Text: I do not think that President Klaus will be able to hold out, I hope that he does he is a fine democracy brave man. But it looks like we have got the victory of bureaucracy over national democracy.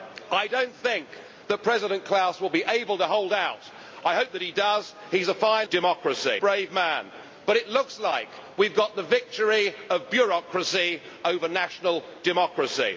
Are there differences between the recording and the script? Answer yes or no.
no